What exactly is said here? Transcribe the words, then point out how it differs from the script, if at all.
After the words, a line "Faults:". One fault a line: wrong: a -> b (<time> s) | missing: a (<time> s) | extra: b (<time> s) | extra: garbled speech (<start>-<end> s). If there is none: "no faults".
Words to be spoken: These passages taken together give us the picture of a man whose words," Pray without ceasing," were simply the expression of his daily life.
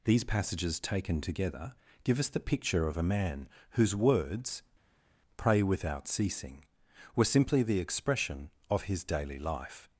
These passages taken together give us the picture of a man whose words," Pray without ceasing," were simply the expression of his daily life.
Faults:
no faults